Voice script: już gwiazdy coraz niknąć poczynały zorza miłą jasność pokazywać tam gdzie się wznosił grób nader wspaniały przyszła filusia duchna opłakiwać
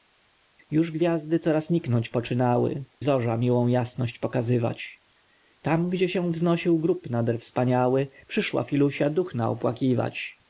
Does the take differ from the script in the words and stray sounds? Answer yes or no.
no